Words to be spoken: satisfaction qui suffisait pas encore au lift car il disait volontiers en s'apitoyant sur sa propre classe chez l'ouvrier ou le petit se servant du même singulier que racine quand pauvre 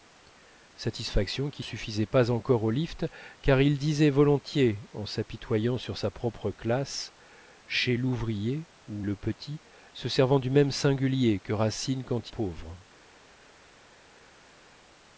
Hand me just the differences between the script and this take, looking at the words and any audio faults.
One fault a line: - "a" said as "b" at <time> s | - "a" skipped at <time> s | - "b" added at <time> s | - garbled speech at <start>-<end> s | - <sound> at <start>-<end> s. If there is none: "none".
none